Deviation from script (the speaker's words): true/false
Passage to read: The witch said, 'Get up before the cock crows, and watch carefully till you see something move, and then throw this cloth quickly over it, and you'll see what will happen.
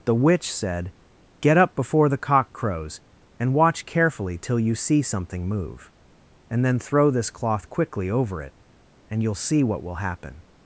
false